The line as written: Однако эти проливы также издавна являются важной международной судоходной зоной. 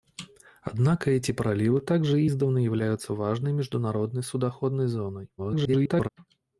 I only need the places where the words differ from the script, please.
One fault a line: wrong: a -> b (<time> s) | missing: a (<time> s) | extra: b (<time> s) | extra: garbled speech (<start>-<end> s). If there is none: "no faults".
extra: garbled speech (5.4-6.1 s)